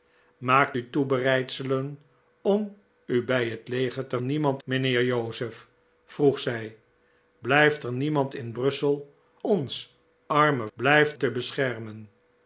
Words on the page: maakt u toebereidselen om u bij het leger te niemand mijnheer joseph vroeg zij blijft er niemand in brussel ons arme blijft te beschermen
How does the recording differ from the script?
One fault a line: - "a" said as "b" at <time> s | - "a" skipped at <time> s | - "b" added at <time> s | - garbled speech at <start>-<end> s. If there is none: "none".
none